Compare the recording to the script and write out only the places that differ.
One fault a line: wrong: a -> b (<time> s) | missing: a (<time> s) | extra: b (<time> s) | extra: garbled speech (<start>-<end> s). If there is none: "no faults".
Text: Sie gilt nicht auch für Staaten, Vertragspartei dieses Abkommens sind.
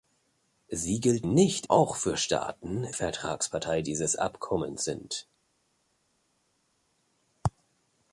no faults